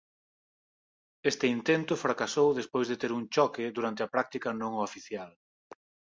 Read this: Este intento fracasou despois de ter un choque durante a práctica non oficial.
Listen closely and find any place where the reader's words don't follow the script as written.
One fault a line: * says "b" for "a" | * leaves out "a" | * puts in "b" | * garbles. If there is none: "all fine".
all fine